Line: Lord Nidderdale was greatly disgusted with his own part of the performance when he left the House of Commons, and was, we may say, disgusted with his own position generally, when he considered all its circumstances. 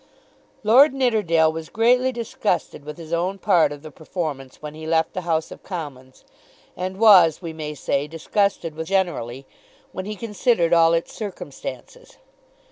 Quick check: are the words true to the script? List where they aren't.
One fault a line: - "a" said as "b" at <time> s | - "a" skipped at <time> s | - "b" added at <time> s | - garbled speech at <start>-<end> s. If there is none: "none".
- "his own position" skipped at 8.9 s